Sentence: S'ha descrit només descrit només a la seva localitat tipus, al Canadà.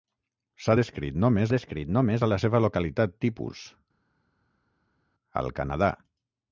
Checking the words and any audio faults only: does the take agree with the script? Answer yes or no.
yes